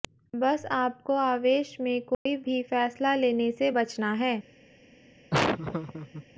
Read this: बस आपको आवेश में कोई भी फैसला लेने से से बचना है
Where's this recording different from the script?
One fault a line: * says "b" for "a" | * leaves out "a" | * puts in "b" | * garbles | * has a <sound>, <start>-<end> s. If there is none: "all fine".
* has a dropout, 2.1-2.3 s
* leaves out "से"
* has a laugh, 5.3-6.3 s